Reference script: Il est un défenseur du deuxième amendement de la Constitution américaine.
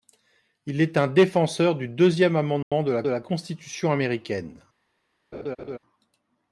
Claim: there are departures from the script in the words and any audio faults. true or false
true